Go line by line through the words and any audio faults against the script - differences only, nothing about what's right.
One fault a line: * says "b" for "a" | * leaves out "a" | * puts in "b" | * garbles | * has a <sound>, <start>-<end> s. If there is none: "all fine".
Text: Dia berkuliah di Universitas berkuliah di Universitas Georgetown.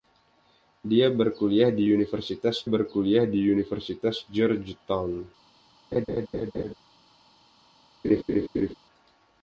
* has a laugh, 5.9-6.7 s
* has a laugh, 8.0-8.7 s